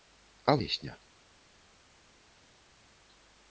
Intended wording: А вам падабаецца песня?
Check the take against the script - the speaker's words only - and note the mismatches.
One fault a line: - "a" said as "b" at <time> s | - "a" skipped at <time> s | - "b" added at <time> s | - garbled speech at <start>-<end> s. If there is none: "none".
- "вам падабаецца" skipped at 0.6 s